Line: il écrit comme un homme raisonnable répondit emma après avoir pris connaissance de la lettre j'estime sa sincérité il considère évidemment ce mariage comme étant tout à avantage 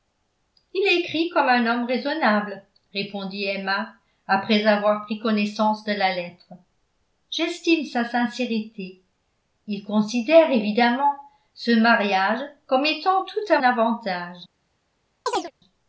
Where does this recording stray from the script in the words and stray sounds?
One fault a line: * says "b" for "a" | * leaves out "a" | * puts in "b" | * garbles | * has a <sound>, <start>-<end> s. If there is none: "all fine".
* has a chirp, 15.3-15.5 s